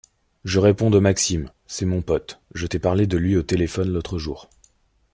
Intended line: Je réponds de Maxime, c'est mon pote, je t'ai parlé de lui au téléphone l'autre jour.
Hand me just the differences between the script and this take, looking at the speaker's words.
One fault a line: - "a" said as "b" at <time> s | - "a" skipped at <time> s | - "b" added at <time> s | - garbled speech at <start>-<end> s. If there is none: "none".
none